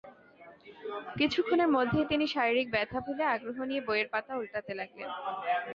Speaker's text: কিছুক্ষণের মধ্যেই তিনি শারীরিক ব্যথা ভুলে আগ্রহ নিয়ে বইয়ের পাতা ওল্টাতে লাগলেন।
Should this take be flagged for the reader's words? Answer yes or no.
no